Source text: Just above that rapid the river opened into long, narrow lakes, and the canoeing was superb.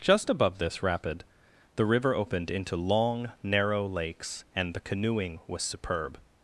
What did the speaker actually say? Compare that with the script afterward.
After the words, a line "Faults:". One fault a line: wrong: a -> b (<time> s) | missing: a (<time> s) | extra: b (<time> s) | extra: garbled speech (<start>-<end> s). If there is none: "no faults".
Just above this rapid the river opened into long, narrow lakes, and the canoeing was superb.
Faults:
wrong: that -> this (0.6 s)